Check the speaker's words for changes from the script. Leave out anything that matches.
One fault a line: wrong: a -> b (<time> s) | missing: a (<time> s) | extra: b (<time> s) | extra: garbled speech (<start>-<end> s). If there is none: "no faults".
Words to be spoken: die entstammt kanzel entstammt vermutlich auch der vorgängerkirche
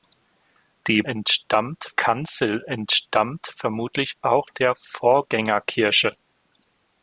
no faults